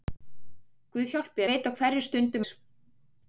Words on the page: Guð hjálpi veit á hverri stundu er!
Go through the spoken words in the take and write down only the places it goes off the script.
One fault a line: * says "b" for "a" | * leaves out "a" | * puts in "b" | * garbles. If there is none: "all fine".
all fine